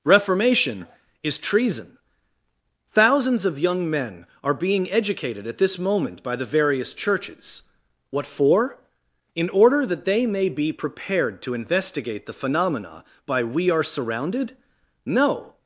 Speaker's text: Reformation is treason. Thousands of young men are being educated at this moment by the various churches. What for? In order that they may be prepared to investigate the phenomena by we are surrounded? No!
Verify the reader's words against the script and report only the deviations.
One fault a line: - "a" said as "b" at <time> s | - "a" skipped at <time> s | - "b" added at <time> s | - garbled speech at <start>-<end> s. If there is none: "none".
none